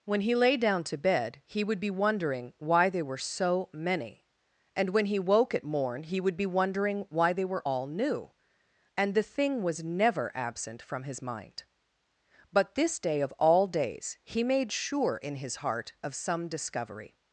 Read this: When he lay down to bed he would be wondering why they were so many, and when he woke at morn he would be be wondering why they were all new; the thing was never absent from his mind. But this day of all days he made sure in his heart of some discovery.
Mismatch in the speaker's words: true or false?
true